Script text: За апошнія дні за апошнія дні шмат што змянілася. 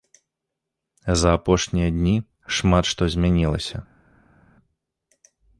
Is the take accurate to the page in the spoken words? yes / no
no